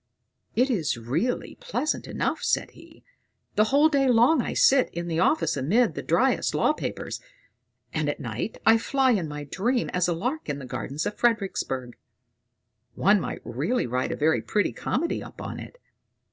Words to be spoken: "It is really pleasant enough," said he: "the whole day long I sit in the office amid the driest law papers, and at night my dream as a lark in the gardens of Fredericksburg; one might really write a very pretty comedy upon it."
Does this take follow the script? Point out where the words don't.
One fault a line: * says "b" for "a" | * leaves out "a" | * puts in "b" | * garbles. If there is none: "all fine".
* puts in "I fly in"